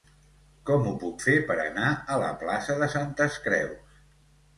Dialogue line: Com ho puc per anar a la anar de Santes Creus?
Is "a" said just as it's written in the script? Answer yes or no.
yes